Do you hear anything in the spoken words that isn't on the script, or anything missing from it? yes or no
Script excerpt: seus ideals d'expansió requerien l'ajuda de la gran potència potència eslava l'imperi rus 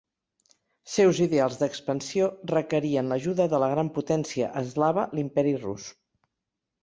yes